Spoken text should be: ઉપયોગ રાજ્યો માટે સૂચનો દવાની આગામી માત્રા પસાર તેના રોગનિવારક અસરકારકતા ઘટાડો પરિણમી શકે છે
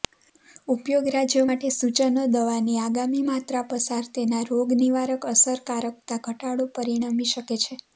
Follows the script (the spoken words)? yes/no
yes